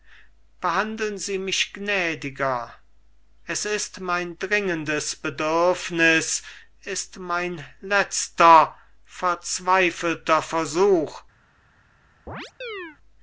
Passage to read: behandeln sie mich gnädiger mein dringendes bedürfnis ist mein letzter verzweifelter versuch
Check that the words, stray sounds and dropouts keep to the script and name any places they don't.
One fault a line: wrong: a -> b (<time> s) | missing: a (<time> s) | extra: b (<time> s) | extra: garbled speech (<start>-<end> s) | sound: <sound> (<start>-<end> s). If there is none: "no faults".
extra: es ist (3.5 s)
sound: chirp (12.3-13.0 s)